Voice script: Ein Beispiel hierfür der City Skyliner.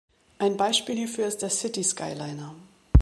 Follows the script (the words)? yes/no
no